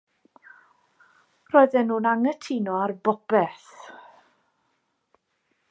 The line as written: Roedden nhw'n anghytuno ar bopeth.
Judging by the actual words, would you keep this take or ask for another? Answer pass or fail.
pass